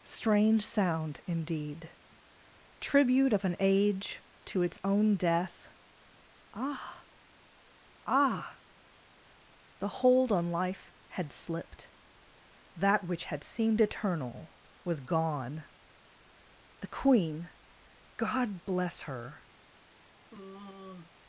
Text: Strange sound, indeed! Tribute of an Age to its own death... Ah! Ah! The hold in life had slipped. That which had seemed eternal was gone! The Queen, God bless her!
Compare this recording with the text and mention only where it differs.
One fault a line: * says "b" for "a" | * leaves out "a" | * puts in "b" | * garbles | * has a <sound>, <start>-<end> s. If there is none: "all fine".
* says "on" for "in"
* has a sigh, 20.3-21.2 s